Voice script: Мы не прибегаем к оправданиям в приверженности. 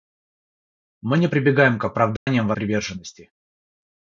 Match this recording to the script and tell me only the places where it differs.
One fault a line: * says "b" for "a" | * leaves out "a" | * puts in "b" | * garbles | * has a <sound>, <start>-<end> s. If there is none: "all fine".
* has a dropout, 2.2-2.3 s